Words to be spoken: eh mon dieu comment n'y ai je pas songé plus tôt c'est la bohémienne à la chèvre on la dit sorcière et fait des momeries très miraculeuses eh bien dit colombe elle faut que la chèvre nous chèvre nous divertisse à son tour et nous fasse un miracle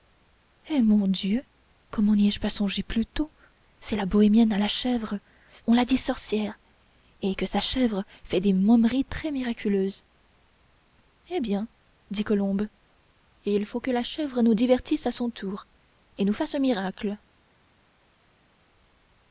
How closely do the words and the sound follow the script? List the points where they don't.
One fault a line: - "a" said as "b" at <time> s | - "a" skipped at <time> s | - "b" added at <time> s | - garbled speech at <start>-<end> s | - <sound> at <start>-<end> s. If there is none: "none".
- "que sa chèvre" added at 7.3 s
- "elle" said as "il" at 13.4 s
- "chèvre nous" skipped at 14.6 s